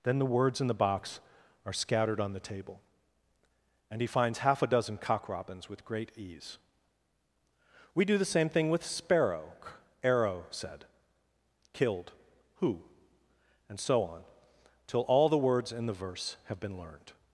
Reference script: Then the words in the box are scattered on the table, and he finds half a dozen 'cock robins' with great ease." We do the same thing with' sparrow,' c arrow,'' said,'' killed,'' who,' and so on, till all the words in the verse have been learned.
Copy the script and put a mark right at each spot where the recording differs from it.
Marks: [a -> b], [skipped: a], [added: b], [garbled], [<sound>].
Then the words in the box are scattered on the table, and he finds half a dozen 'cock robins' with great ease." We do the same thing with' sparrow,' [skipped: c] arrow,'' said,'' killed,'' who,' and so on, till all the words in the verse have been learned.